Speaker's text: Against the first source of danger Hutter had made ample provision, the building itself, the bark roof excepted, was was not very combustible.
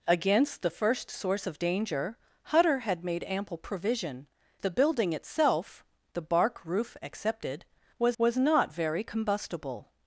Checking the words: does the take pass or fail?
pass